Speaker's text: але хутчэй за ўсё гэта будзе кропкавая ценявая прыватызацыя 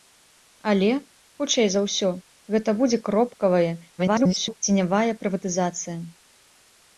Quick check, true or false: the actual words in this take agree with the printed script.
false